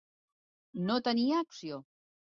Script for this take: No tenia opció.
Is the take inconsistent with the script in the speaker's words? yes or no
no